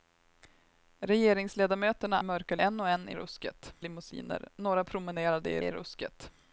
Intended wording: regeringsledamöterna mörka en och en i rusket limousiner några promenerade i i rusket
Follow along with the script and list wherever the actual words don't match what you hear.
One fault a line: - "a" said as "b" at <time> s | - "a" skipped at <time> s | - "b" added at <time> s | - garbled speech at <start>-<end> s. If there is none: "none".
none